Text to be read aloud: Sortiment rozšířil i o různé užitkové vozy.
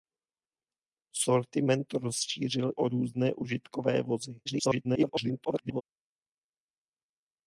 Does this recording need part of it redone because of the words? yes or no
yes